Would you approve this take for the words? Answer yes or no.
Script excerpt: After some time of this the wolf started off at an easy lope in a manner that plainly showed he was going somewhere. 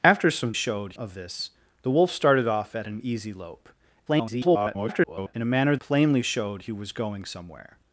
no